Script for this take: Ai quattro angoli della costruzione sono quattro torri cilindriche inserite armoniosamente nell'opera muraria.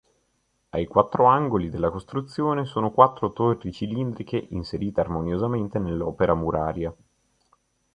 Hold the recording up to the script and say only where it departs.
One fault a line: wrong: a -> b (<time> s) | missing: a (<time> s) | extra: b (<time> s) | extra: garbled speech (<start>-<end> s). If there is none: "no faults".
no faults